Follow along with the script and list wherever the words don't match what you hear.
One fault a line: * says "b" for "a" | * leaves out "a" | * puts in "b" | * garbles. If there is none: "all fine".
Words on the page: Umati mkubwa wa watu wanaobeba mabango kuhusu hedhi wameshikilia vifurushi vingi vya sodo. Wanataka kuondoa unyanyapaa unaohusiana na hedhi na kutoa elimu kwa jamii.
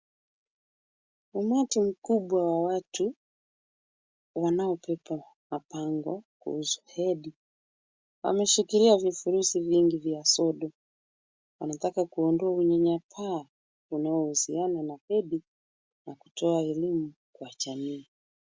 all fine